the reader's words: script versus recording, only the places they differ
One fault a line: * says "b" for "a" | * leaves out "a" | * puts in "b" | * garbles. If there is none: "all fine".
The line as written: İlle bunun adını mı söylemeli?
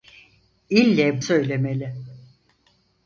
* leaves out "bunun adını mı"